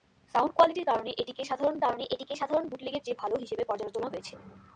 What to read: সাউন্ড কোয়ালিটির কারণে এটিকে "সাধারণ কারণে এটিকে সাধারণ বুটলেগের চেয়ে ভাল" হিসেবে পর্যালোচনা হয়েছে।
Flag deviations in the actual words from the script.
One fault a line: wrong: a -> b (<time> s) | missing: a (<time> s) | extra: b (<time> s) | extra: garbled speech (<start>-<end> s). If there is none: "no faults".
no faults